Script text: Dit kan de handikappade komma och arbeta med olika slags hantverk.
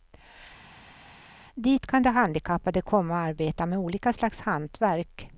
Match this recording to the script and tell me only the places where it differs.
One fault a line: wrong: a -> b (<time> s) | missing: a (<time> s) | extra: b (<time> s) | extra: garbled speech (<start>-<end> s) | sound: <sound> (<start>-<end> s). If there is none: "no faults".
no faults